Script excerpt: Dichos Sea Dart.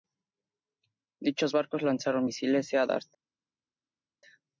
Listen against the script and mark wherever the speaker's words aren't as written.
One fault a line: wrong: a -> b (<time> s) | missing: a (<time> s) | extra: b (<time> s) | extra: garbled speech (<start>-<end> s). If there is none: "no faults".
extra: barcos lanzaron misiles (1.5 s)